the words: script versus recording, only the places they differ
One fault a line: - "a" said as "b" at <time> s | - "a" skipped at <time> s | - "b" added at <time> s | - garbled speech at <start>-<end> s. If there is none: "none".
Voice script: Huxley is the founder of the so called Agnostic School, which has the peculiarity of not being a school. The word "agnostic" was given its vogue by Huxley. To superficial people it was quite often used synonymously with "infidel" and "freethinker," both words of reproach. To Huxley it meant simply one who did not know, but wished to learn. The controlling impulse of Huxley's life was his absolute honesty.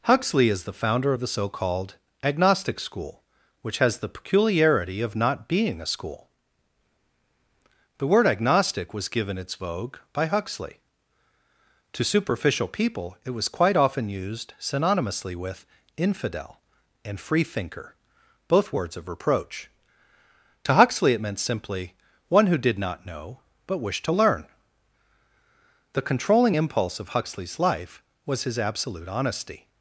none